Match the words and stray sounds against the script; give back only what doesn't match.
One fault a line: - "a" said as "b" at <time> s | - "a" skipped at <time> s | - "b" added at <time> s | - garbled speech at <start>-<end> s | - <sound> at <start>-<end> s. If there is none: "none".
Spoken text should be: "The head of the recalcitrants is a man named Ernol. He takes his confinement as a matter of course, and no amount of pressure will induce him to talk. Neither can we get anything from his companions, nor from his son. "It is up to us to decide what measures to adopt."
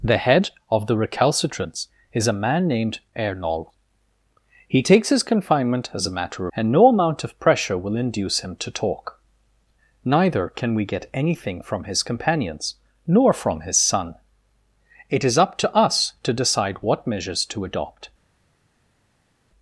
- "of course" skipped at 6.5 s